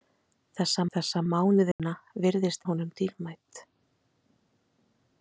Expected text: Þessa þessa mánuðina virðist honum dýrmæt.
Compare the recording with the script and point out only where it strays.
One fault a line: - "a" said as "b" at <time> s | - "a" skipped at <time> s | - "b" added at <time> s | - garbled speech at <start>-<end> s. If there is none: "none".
none